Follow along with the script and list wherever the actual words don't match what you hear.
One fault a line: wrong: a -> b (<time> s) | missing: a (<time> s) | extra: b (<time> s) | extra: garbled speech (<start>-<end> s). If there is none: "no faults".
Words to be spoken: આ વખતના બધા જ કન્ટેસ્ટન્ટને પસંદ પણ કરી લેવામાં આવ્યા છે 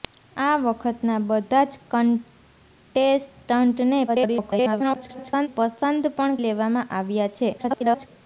extra: garbled speech (4.1-5.5 s)
missing: કરી (6.4 s)
extra: garbled speech (7.6-8.1 s)